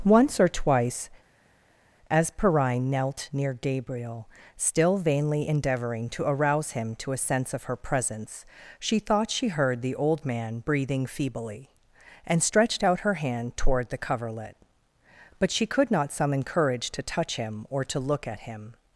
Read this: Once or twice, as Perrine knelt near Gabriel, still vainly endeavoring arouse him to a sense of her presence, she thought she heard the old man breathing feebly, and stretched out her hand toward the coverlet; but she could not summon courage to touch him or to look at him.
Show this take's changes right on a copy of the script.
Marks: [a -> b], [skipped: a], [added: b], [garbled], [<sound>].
Once or twice, as Perrine knelt near Gabriel, still vainly endeavoring [added: to] arouse him to a sense of her presence, she thought she heard the old man breathing feebly, and stretched out her hand toward the coverlet; but she could not summon courage to touch him or to look at him.